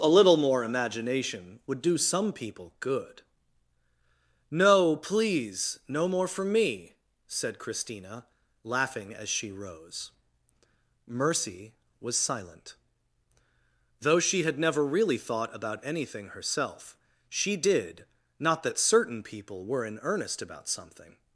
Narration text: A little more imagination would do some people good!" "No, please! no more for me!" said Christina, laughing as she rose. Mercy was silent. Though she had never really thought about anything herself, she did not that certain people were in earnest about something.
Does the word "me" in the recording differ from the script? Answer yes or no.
no